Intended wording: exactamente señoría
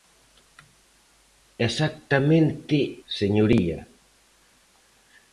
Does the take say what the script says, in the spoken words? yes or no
yes